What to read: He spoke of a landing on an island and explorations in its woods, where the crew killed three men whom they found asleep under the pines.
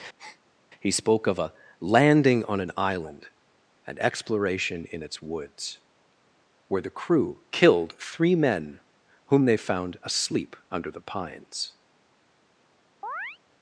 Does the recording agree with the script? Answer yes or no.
no